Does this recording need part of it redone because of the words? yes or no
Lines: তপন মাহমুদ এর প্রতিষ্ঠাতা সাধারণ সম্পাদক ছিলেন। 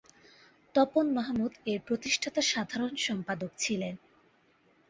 no